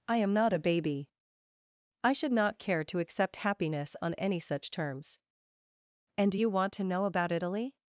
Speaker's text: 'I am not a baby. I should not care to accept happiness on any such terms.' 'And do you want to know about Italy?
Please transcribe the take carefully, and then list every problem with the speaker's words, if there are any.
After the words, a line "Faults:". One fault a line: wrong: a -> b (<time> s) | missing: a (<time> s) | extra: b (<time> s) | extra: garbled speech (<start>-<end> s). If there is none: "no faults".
'I am not a baby. I should not care to accept happiness on any such terms.' 'And do you want to know about Italy?
Faults:
no faults